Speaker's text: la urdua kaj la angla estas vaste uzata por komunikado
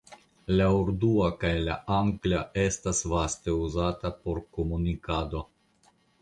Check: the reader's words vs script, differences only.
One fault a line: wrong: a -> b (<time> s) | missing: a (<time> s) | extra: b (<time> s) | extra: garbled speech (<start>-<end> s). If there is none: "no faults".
no faults